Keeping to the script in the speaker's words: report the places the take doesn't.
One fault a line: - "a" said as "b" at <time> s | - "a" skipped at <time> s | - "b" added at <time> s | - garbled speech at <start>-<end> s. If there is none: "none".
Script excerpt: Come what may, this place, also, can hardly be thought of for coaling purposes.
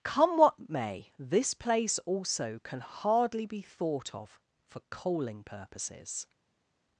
none